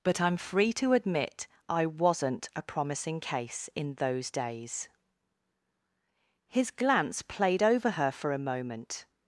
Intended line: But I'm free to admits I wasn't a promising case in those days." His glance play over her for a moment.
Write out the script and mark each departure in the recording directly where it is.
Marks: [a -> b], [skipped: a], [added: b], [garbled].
But I'm free to [admits -> admit] I wasn't a promising case in those days." His glance [play -> played] over her for a moment.